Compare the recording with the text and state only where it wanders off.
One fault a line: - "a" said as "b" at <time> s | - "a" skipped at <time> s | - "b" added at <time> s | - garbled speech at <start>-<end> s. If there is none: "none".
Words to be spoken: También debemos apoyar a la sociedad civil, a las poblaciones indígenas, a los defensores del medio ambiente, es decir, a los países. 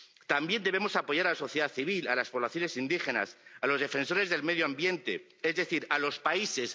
none